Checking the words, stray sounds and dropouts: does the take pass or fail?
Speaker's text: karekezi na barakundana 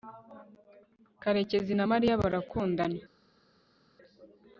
fail